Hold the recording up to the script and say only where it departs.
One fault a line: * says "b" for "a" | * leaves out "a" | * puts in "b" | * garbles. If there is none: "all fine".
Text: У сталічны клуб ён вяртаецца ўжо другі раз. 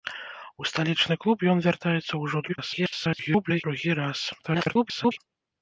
* garbles
* garbles